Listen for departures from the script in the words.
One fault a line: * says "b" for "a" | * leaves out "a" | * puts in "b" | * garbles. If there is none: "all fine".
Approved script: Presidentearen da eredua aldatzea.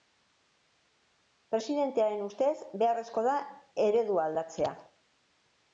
* puts in "ustez beharrezkoa"